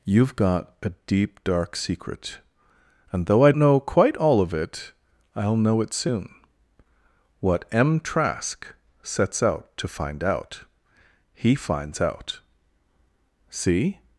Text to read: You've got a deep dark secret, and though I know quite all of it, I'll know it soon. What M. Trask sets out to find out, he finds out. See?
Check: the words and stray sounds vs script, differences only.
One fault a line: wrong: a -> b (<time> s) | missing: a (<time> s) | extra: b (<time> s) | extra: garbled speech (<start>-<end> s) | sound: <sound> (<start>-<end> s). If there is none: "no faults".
no faults